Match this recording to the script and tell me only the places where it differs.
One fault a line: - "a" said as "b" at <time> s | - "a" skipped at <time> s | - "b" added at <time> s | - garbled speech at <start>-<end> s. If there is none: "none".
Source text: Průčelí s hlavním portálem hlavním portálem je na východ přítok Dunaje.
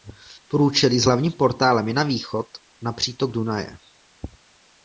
- "hlavním portálem" skipped at 1.9 s
- "na" added at 2.8 s